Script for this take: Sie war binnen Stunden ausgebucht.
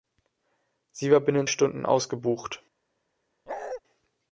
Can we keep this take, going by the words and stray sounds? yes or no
no